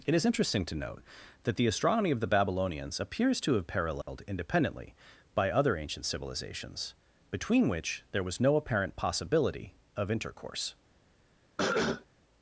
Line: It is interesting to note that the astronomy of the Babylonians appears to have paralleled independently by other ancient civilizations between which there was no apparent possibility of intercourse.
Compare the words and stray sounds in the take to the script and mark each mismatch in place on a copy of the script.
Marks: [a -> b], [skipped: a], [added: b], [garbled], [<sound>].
It is interesting to note that the astronomy of the Babylonians appears to have paralleled [dropout] independently by other ancient civilizations between which there was no apparent possibility of intercourse. [cough]